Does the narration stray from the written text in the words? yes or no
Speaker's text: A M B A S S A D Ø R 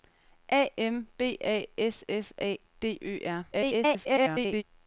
yes